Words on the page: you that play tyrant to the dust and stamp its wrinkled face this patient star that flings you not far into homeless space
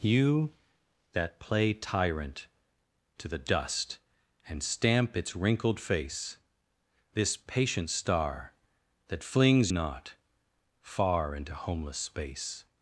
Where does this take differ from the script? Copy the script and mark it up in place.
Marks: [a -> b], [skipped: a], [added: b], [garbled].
you that play tyrant to the dust and stamp its wrinkled face this patient star that flings [skipped: you] not far into homeless space